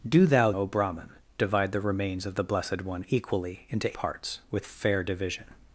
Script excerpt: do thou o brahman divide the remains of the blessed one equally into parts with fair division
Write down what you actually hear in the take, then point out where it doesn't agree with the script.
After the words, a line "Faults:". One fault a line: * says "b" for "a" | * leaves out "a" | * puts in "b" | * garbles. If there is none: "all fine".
do thou o brahman divide the remains of the blessed one equally into parts with fair division
Faults:
all fine